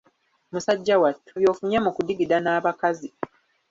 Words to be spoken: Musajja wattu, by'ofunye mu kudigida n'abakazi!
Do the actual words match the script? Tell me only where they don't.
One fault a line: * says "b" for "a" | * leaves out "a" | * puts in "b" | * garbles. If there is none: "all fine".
all fine